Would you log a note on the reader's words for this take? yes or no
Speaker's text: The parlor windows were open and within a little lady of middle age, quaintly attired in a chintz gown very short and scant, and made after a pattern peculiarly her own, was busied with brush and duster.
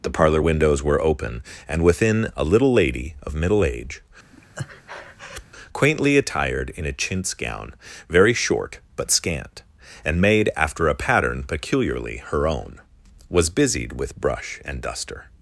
yes